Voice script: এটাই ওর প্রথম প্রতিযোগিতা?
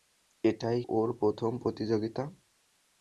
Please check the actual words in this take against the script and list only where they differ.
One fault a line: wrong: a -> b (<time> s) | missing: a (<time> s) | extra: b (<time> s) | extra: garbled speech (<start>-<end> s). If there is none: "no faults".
no faults